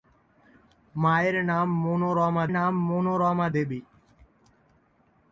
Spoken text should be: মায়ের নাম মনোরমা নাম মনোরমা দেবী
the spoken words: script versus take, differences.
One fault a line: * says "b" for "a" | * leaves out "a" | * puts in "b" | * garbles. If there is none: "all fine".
all fine